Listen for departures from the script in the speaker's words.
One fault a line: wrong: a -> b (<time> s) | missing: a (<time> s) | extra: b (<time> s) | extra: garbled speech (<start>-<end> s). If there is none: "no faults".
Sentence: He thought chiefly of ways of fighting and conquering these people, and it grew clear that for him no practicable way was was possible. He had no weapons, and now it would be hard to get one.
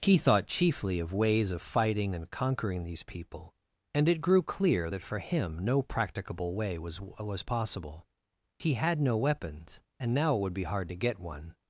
no faults